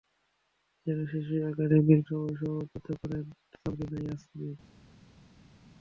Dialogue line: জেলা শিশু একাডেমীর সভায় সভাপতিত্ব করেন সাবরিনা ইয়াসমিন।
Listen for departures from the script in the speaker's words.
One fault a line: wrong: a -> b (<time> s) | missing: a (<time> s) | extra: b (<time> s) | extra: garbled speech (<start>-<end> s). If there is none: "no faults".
no faults